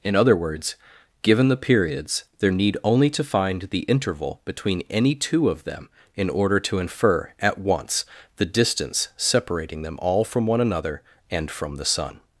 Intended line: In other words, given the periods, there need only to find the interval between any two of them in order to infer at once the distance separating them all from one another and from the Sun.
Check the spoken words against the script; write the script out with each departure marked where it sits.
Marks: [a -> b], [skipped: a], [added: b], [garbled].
In other words, given the periods, there need only to find the interval between any two of them in order to infer at once the distance separating them all from one another and from the Sun.